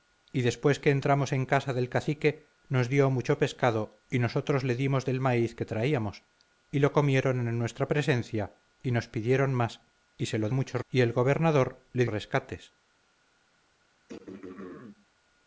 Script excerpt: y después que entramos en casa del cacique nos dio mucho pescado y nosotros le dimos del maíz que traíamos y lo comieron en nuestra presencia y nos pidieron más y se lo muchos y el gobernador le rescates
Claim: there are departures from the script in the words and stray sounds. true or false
true